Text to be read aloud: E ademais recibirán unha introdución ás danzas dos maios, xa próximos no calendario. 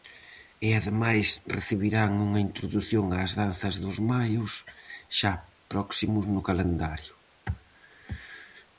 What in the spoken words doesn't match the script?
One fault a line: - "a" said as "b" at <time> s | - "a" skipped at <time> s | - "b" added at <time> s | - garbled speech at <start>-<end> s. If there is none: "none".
none